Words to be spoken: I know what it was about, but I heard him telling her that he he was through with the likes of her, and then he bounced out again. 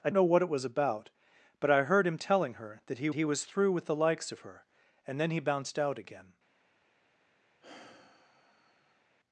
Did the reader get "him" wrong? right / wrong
right